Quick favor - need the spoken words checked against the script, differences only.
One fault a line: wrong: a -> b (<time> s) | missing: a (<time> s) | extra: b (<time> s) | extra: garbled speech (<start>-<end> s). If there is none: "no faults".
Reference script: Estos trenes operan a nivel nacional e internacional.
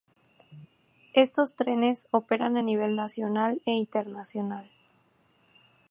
no faults